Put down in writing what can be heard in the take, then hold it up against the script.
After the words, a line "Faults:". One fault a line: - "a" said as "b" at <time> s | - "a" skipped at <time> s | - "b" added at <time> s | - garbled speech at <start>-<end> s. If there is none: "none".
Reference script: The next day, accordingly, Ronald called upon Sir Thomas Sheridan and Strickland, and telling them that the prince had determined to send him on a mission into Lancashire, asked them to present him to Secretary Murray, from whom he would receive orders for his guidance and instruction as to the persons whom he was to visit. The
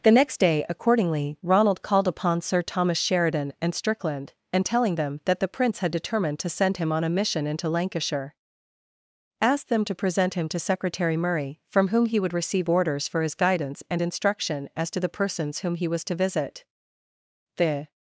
The next day, accordingly, Ronald called upon Sir Thomas Sheridan and Strickland, and telling them that the prince had determined to send him on a mission into Lancashire, asked them to present him to Secretary Murray, from whom he would receive orders for his guidance and instruction as to the persons whom he was to visit. The
Faults:
none